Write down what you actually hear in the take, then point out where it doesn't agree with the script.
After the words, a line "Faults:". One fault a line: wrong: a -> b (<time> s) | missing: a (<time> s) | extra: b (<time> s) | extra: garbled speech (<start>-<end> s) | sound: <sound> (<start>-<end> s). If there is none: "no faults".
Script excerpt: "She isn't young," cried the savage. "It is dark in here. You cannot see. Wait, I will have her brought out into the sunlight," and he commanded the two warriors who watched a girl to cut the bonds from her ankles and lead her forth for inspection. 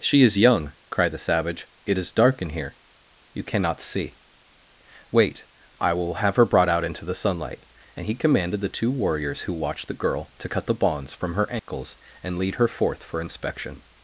"She is young," cried the savage. "It is dark in here. You cannot see. Wait, I will have her brought out into the sunlight," and he commanded the two warriors who watched the girl to cut the bonds from her ankles and lead her forth for inspection.
Faults:
wrong: isn't -> is (0.2 s)
wrong: a -> the (9.9 s)
sound: dropout (11.6-11.7 s)